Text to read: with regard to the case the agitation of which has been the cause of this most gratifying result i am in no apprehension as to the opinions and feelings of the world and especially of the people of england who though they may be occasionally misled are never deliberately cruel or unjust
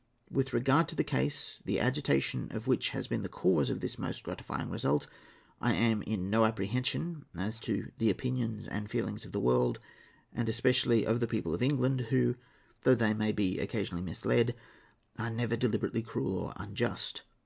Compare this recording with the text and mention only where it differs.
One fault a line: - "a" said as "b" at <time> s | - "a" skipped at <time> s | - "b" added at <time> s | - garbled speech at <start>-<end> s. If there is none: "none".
none